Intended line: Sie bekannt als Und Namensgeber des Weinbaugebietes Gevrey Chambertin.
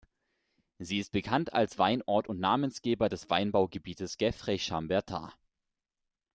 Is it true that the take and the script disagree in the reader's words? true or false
true